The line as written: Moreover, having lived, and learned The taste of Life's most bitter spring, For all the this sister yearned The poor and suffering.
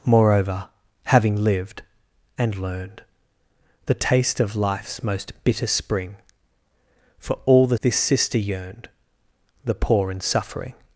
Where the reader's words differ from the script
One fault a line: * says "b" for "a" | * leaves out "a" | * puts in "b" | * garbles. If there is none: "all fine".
all fine